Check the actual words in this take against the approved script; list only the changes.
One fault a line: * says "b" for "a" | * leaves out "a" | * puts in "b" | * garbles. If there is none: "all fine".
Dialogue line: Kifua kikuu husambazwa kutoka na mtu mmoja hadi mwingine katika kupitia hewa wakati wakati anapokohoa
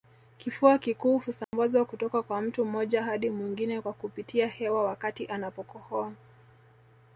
* says "kwa" for "na"
* says "kwa" for "katika"
* leaves out "wakati"